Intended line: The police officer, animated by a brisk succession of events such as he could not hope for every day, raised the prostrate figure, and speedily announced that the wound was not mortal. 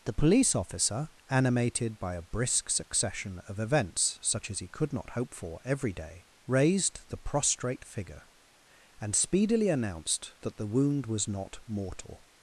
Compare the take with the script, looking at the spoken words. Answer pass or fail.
pass